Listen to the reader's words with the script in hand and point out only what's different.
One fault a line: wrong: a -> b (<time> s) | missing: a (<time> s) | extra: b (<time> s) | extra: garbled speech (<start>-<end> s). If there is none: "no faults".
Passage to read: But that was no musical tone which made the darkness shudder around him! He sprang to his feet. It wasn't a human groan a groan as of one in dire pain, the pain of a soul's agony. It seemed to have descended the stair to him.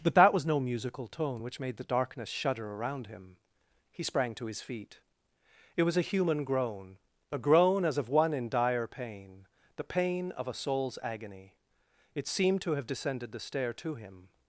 wrong: wasn't -> was (5.8 s)